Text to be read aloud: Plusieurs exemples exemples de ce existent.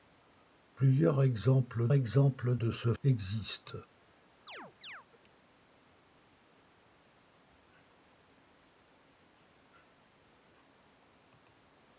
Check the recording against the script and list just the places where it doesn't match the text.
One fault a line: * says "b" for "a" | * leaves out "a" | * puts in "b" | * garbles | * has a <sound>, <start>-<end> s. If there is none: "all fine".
* has a chirp, 4.5-5.1 s